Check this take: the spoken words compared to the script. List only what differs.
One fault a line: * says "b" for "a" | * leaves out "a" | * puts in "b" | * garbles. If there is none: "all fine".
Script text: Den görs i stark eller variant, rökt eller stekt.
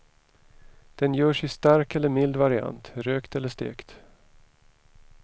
* puts in "mild"